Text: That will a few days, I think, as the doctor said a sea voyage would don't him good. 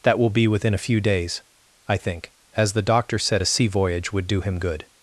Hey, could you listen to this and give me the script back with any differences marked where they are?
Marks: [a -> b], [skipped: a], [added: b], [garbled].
That will [added: be within] a few days, I think, as the doctor said a sea voyage would [don't -> do] him good.